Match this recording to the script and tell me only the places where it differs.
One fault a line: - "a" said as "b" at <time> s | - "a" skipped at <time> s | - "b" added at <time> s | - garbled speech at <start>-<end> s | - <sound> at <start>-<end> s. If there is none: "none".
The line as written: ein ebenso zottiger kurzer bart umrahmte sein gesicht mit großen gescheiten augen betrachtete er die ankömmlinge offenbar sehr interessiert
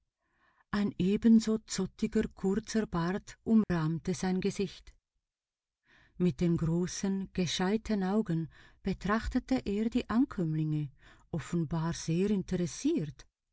- dropout at 3.6-3.7 s
- "den" added at 6.4 s